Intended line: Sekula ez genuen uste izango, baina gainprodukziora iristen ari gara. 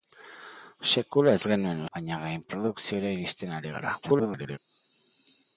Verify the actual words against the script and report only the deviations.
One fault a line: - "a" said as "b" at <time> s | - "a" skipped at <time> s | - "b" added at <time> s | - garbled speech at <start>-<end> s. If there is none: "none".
- "uste izango" skipped at 1.8 s
- garbled speech at 4.0-4.6 s